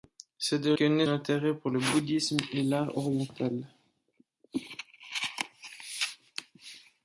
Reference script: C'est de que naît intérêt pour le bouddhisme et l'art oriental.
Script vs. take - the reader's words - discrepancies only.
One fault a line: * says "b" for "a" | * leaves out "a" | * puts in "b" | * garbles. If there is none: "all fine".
all fine